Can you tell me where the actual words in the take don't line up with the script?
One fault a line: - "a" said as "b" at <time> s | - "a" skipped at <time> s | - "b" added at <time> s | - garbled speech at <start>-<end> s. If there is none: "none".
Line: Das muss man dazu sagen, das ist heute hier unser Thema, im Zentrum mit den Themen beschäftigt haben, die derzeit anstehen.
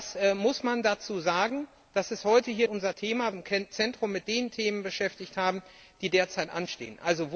none